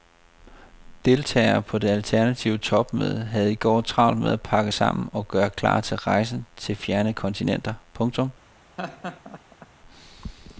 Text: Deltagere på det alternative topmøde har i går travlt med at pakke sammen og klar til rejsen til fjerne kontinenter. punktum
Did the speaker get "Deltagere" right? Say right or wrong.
right